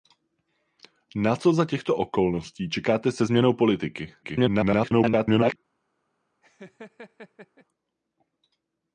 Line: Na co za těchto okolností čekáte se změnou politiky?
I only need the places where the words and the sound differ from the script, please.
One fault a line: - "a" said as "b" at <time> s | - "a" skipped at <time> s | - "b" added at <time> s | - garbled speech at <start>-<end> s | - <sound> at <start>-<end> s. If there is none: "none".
- garbled speech at 4.2-5.6 s
- laugh at 6.4-7.7 s